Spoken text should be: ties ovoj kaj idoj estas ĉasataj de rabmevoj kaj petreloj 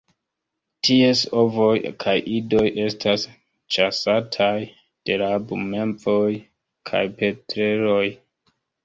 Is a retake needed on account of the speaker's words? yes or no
no